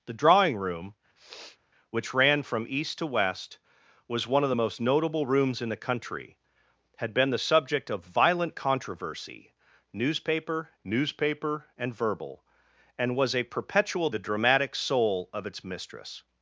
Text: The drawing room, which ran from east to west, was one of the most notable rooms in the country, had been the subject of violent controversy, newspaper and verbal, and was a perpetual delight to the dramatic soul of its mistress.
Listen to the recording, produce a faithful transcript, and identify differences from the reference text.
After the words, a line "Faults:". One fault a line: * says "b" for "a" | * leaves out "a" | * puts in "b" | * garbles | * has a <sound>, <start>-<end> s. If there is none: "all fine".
The drawing room, which ran from east to west, was one of the most notable rooms in the country, had been the subject of violent controversy, newspaper newspaper and verbal, and was a perpetual the dramatic soul of its mistress.
Faults:
* has a sniff, 1.2-1.6 s
* puts in "newspaper"
* leaves out "delight to"